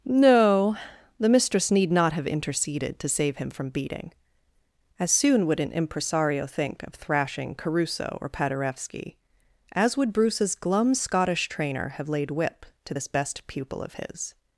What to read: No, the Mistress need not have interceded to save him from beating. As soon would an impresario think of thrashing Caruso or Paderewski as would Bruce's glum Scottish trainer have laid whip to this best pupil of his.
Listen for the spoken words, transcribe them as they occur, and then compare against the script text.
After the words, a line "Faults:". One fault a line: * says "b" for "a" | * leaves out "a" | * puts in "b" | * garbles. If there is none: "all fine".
No, the Mistress need not have interceded to save him from beating. As soon would an impresario think of thrashing Caruso or Paderewski as would Bruce's glum Scottish trainer have laid whip to this best pupil of his.
Faults:
all fine